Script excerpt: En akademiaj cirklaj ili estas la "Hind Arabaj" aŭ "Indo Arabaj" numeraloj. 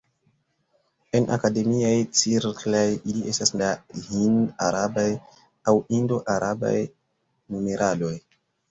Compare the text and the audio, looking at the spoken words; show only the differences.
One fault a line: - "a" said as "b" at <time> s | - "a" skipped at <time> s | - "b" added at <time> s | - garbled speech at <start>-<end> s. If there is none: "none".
none